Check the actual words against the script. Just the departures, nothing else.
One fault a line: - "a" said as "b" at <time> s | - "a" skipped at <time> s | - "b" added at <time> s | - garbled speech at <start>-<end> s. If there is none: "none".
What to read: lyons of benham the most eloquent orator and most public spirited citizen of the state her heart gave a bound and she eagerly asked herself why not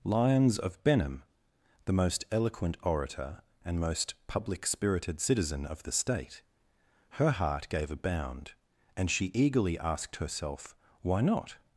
none